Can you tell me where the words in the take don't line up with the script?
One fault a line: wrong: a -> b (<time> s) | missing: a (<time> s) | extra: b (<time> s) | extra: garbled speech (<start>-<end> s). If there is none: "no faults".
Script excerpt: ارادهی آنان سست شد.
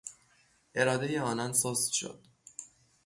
no faults